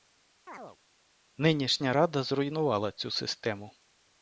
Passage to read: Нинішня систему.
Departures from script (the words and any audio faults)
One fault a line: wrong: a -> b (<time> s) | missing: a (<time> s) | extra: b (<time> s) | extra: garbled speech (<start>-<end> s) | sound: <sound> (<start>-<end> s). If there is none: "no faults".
sound: chirp (0.5-0.8 s)
extra: рада зруйнувала цю (1.9 s)